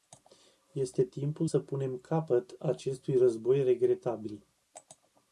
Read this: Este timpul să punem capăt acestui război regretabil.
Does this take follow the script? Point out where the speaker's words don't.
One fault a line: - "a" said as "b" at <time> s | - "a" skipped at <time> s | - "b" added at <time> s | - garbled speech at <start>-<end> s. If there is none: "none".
none